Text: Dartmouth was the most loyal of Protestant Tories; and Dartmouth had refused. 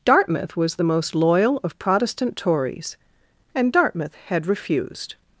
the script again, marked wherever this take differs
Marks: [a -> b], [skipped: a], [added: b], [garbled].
Dartmouth was the most loyal of Protestant Tories; and Dartmouth had refused.